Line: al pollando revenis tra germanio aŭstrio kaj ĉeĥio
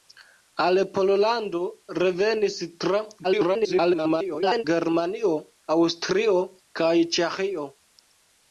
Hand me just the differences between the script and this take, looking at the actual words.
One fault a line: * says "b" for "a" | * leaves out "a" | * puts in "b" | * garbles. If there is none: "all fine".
* garbles